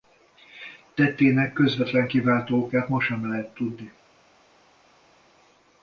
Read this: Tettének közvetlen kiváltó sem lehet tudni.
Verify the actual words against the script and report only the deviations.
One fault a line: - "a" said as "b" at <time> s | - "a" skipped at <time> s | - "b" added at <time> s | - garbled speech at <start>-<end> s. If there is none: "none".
- "okát ma" added at 2.6 s